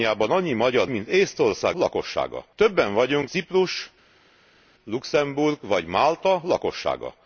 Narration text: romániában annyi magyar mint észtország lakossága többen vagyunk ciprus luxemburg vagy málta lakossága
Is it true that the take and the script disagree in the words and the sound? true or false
false